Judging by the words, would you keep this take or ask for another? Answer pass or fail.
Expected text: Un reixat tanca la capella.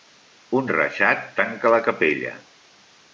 pass